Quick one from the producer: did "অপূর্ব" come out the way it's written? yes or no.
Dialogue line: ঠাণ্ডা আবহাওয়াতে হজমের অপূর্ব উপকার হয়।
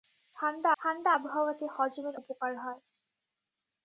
no